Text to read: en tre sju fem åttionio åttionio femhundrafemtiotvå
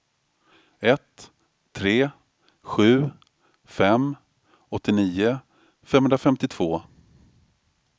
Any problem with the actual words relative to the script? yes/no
yes